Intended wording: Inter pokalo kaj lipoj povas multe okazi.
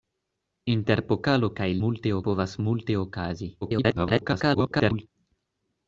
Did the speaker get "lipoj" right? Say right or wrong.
wrong